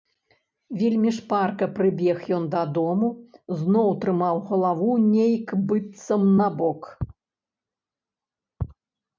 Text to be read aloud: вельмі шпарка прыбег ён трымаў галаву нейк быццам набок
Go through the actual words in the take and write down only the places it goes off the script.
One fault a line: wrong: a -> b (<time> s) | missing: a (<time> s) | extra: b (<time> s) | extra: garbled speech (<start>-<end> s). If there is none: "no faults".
extra: дадому зноў (2.5 s)